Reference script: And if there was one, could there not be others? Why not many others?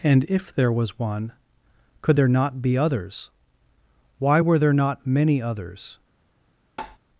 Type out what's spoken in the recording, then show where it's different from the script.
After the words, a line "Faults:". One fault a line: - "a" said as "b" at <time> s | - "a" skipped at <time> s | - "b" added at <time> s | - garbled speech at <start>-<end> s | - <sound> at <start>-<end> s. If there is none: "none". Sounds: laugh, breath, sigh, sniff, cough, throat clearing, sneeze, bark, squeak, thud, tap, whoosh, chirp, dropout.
And if there was one, could there not be others? Why were there not many others?
Faults:
- "were there" added at 4.4 s
- tap at 6.8-7.0 s